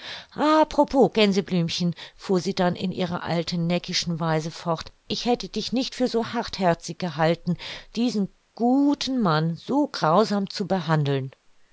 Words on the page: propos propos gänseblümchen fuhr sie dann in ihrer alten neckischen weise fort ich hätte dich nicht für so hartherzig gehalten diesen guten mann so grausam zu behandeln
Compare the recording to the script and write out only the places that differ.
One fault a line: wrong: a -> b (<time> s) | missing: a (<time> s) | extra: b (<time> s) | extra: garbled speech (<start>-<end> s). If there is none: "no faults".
missing: propos (1.1 s)